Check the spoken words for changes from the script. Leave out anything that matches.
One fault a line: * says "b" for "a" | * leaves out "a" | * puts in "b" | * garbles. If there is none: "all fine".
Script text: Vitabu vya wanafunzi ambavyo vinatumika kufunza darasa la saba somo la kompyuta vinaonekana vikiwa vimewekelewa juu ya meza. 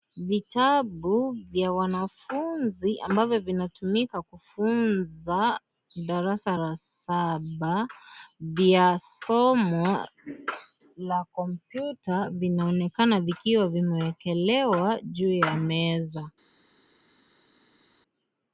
* puts in "vya"